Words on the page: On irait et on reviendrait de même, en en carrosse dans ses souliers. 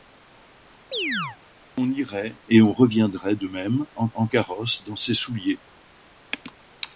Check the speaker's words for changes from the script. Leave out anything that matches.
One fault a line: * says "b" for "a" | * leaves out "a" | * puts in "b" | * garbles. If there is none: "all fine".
all fine